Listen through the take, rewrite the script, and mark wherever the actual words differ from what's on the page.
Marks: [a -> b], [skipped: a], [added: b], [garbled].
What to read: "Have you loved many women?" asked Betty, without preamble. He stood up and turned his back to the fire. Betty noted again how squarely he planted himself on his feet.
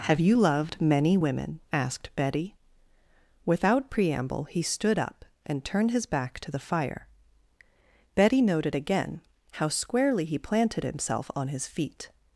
"Have you loved many women?" asked Betty, without preamble. He stood up and turned his back to the fire. Betty noted again how squarely he planted himself on his feet.